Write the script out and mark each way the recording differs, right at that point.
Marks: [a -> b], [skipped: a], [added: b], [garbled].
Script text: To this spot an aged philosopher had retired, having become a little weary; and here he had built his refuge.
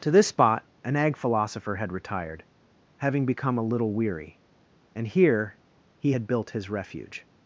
To this spot an [aged -> ag] philosopher had retired, having become a little weary; and here he had built his refuge.